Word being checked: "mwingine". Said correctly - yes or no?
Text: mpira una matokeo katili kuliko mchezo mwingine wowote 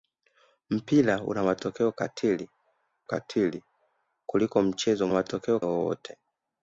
no